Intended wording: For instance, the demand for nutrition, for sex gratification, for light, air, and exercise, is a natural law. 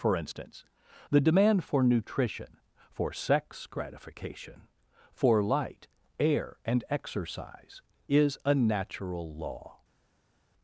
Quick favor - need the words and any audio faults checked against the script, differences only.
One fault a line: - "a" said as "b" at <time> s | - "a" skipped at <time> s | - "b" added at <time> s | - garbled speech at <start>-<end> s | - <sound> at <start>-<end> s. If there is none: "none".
none